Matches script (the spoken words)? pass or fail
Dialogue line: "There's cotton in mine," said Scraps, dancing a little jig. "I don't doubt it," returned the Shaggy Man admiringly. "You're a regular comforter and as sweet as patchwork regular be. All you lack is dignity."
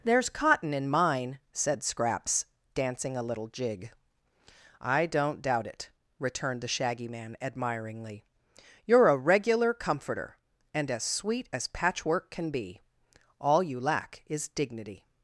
fail